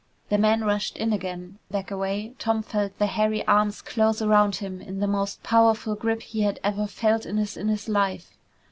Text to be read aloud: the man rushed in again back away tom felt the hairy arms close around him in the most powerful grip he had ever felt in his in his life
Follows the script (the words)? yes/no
yes